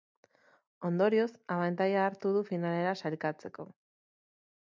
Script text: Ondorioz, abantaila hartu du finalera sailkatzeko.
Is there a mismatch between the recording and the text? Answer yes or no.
no